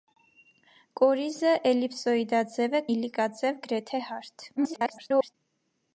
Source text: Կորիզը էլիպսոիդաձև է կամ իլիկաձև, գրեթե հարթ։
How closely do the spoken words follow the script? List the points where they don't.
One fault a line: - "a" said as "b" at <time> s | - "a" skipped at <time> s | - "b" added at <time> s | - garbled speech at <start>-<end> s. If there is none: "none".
- "կամ" skipped at 2.8 s
- garbled speech at 4.6-5.3 s